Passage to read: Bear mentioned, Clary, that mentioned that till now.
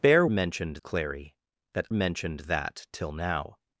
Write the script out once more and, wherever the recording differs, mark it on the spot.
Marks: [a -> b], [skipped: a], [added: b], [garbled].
Bear mentioned, Clary, that mentioned that till now.